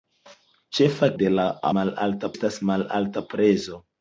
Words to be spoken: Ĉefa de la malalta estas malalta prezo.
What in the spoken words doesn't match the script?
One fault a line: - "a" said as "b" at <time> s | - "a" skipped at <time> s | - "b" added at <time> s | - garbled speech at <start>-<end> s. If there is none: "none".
none